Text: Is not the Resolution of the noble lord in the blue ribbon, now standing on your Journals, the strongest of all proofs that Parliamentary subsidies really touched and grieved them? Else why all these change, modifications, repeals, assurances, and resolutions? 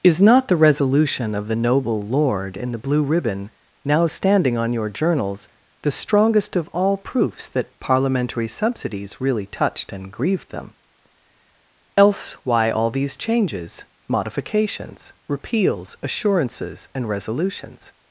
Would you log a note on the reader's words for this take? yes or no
yes